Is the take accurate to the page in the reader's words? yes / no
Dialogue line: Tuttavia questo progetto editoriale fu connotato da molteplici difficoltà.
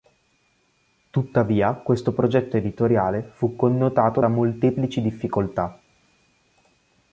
yes